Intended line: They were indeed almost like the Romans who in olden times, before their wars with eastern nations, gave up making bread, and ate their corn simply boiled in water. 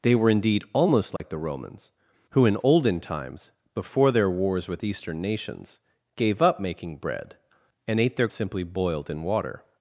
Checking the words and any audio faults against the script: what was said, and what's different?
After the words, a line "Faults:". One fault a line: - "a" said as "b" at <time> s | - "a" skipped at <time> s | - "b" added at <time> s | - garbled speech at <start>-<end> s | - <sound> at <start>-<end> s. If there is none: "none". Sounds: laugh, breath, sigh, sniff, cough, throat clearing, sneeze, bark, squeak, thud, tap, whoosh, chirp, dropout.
They were indeed almost like the Romans who in olden times, before their wars with eastern nations, gave up making bread, and ate their simply boiled in water.
Faults:
- dropout at 1.2-1.2 s
- "corn" skipped at 8.3 s